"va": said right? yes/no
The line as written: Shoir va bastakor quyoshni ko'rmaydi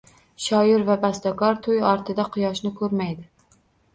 yes